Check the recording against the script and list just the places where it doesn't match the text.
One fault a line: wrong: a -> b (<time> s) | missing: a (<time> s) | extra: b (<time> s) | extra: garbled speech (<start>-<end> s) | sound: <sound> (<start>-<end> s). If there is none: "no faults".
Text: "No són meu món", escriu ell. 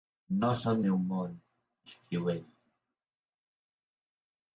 no faults